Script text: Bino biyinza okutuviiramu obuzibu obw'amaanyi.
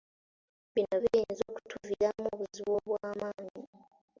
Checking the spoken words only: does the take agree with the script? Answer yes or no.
yes